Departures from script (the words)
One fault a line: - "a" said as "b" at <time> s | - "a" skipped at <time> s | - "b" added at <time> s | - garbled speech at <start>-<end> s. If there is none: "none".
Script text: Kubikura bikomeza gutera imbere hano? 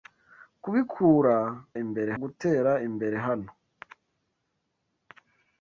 - "bikomeza" said as "imbere" at 1.8 s